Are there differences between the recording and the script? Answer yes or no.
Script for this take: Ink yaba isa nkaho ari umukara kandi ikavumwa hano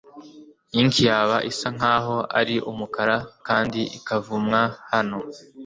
no